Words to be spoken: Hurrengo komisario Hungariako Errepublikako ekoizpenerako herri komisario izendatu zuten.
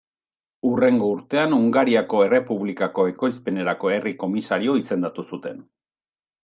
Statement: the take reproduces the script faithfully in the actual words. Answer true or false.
false